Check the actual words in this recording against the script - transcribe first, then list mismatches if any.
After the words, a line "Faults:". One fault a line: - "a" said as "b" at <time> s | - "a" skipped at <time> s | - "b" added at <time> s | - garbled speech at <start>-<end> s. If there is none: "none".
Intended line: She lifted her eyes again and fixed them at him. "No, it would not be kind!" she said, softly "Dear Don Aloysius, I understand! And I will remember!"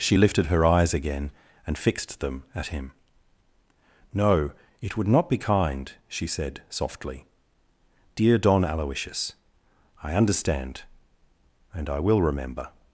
She lifted her eyes again and fixed them at him. "No, it would not be kind!" she said, softly "Dear Don Aloysius, I understand! And I will remember!"
Faults:
none